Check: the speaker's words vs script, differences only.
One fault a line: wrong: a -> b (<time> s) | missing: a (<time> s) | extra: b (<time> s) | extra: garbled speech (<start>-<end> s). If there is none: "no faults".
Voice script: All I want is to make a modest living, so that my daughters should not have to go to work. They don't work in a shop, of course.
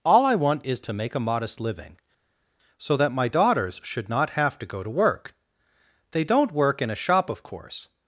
no faults